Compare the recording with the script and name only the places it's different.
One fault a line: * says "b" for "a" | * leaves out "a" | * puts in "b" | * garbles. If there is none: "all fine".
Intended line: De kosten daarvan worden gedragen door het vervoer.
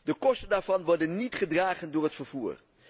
* puts in "niet"